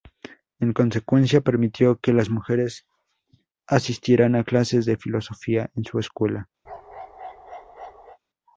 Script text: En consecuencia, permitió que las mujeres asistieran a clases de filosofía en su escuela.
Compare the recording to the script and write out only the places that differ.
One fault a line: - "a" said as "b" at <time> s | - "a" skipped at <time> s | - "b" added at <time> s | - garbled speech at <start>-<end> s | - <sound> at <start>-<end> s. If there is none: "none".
- bark at 6.6-8.2 s